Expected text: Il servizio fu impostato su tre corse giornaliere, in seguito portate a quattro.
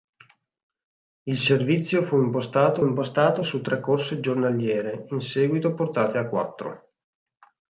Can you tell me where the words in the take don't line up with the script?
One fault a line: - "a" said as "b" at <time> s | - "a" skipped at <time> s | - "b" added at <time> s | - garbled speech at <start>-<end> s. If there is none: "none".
- "impostato" added at 2.8 s